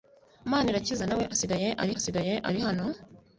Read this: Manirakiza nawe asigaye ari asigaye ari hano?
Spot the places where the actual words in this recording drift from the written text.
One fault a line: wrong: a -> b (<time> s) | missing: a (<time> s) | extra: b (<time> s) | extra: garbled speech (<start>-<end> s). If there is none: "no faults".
no faults